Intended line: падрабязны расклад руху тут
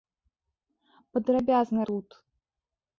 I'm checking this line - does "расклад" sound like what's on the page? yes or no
no